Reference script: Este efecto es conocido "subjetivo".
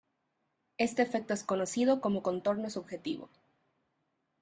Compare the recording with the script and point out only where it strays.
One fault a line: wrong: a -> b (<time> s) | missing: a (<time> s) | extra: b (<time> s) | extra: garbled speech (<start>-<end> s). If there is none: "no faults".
extra: como contorno (2.0 s)